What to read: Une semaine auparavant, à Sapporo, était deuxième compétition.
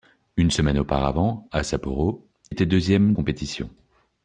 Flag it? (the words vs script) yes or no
no